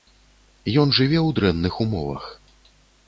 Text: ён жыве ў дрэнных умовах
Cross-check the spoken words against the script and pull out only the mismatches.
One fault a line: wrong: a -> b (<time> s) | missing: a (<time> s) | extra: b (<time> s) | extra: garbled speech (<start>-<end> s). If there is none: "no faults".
no faults